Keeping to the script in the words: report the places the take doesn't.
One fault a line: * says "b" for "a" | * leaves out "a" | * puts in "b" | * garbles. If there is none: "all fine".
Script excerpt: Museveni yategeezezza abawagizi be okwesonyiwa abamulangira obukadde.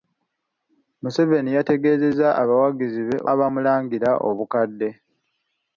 * leaves out "okwesonyiwa"